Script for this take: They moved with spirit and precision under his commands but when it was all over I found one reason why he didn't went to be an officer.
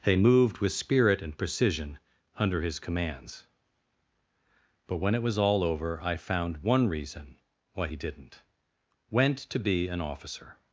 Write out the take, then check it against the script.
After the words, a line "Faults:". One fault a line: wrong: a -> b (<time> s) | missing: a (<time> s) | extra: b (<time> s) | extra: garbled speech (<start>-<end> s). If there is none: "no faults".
They moved with spirit and precision under his commands but when it was all over I found one reason why he didn't went to be an officer.
Faults:
no faults